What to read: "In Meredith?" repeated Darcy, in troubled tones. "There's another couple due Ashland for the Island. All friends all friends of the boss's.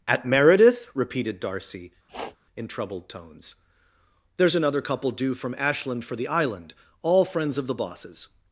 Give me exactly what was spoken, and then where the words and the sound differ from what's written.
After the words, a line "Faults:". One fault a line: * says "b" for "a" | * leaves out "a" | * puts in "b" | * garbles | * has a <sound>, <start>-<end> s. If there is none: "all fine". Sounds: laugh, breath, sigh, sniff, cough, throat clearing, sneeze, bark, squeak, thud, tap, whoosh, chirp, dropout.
"At Meredith?" repeated Darcy, in troubled tones. "There's another couple due from Ashland for the Island. All friends of the boss's.
Faults:
* says "At" for "In"
* has a sniff, 2.1-2.4 s
* puts in "from"
* leaves out "all friends"